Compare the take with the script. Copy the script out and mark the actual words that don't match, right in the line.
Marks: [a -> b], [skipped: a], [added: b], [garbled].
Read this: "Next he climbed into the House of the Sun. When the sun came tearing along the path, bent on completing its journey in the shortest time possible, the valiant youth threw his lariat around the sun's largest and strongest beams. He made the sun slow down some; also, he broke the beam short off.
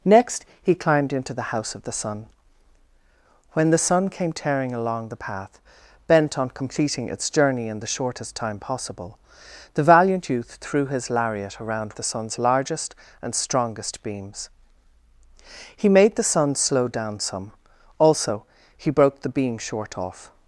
"Next he climbed into the House of the Sun. When the sun came tearing along the path, bent on completing its journey in the shortest time possible, the valiant youth threw his lariat around the sun's largest and strongest beams. He made the sun slow down some; also, he broke the beam short off.